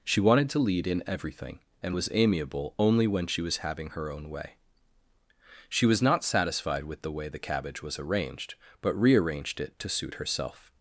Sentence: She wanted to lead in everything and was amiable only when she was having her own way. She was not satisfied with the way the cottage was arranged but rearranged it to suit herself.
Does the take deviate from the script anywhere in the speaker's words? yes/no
yes